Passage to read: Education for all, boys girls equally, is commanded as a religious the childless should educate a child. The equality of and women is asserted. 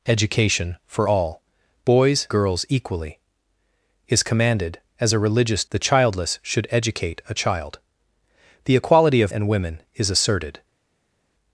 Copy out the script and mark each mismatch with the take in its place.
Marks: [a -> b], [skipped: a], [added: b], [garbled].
Education for all, boys girls equally, is commanded as a religious the childless should educate a child. The equality of and women is asserted.